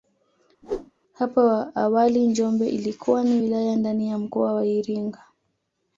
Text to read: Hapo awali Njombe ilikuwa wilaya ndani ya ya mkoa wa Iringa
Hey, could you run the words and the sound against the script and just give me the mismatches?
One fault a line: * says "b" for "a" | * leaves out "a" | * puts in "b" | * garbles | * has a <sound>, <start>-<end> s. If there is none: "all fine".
* has a whoosh, 0.6-0.9 s
* puts in "ni"
* leaves out "ya"